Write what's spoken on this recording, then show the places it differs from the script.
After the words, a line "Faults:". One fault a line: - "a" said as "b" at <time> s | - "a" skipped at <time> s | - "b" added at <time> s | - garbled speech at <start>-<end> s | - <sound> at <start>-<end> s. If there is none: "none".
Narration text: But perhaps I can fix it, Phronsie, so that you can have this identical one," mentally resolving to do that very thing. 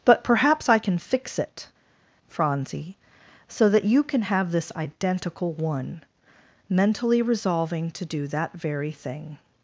But perhaps I can fix it, Phronsie, so that you can have this identical one," mentally resolving to do that very thing.
Faults:
none